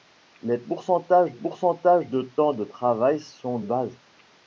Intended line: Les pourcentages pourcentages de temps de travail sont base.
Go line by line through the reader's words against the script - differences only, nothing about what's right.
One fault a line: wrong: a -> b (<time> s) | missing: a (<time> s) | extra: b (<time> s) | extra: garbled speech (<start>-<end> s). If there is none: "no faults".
no faults